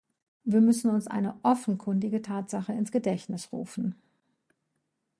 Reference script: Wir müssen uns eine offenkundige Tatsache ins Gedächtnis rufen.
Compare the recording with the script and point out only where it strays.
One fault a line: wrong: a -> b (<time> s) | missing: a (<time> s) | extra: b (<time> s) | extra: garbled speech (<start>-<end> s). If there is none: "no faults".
no faults